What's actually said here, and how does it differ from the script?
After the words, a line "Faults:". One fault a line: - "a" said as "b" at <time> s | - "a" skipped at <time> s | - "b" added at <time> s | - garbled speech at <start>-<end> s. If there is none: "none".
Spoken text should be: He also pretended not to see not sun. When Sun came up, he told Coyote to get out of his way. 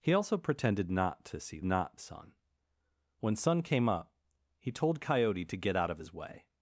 He also pretended not to see not sun. When Sun came up, he told Coyote to get out of his way.
Faults:
none